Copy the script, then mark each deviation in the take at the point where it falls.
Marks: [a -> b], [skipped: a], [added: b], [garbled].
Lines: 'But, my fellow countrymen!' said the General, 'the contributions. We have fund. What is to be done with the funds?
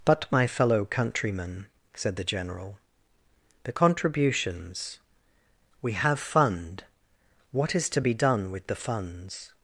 'But, my fellow countrymen!' said the General, 'the contributions. We have fund. What is to be done with the funds?